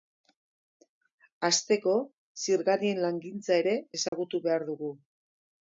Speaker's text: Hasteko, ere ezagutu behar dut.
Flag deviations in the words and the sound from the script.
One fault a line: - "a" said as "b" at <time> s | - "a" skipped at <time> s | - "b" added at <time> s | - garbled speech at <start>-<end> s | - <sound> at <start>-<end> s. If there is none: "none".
- "zirgarien langintza" added at 2.5 s
- dropout at 4.1-4.1 s
- "dut" said as "dugu" at 4.7 s